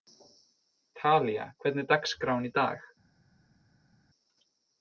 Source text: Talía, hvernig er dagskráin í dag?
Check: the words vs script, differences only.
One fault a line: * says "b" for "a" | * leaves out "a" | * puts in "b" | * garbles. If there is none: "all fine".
all fine